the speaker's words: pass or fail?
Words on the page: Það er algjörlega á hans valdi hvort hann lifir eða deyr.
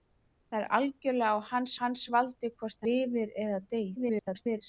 fail